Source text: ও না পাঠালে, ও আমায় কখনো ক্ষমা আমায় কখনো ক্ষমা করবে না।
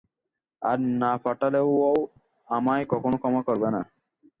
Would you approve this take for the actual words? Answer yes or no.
no